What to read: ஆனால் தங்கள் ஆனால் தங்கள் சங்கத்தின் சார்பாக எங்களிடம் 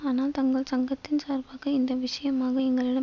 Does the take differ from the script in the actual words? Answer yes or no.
yes